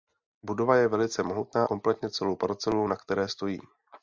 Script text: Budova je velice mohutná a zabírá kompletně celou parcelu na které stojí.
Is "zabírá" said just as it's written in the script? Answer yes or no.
no